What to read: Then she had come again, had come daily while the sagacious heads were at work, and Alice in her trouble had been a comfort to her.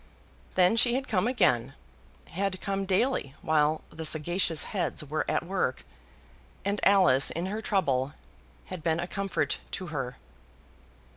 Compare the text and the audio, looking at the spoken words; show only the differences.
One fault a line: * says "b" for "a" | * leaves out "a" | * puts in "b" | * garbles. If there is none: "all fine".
all fine